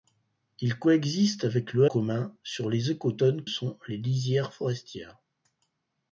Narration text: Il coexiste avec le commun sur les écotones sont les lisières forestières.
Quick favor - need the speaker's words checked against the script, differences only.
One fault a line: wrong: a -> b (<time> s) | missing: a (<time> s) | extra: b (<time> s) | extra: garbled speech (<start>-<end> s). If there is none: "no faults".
no faults